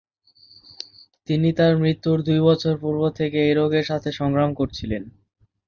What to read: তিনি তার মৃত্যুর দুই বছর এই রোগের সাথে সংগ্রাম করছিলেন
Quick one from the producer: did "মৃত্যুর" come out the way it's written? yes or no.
yes